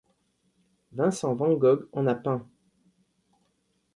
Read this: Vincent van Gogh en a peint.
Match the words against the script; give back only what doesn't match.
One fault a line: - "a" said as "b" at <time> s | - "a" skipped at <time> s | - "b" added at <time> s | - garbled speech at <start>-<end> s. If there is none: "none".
none